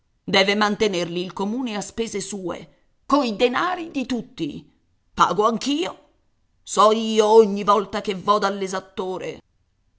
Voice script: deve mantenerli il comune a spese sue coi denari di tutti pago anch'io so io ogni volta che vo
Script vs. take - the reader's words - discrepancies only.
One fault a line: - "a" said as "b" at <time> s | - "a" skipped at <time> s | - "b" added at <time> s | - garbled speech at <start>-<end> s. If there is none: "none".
none